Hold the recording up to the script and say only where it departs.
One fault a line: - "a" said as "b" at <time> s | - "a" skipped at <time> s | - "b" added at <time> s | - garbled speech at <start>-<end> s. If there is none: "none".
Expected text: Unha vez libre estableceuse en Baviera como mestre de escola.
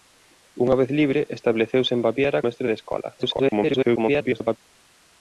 - "como" skipped at 2.4 s
- garbled speech at 3.2-4.6 s